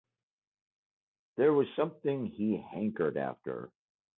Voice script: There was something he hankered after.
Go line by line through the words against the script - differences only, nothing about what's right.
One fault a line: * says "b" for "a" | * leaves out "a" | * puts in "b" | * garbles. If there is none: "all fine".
all fine